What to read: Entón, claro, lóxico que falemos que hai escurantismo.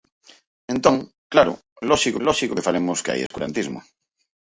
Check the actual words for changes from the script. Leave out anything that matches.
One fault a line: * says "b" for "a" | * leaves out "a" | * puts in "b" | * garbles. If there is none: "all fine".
* puts in "lóxico"